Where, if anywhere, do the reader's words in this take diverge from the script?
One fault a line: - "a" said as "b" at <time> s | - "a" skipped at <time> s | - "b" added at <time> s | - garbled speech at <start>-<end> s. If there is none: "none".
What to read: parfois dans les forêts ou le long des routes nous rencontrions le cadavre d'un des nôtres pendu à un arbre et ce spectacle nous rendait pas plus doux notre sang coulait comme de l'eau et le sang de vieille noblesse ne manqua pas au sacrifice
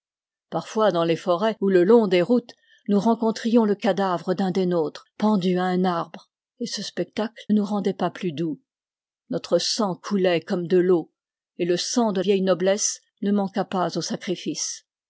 none